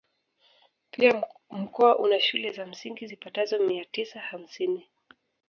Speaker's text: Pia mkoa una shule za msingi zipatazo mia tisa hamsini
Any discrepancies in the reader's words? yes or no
no